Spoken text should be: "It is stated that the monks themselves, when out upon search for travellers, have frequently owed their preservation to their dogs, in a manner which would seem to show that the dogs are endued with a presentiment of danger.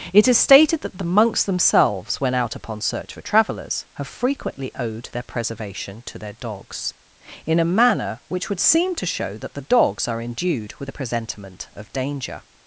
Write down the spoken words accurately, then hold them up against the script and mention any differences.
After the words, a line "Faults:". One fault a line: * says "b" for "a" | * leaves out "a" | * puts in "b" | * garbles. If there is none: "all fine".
"It is stated that the monks themselves, when out upon search for travellers, have frequently owed their preservation to their dogs, in a manner which would seem to show that the dogs are endued with a presentiment of danger.
Faults:
all fine